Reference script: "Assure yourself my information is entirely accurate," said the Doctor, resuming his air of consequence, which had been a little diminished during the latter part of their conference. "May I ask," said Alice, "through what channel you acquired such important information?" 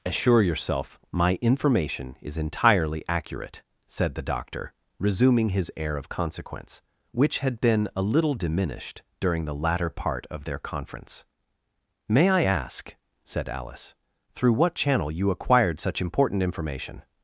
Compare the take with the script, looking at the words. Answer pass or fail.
pass